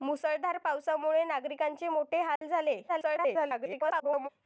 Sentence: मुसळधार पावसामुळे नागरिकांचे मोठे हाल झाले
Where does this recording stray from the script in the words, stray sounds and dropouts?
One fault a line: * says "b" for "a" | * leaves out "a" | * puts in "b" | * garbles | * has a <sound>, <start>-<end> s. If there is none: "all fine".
* has a dropout, 2.4-2.4 s
* garbles